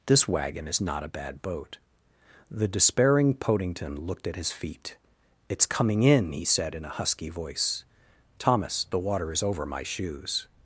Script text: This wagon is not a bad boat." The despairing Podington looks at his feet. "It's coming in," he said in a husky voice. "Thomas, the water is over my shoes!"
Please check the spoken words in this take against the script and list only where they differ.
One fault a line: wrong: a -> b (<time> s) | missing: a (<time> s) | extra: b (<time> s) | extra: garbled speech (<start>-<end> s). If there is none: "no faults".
wrong: looks -> looked (4.0 s)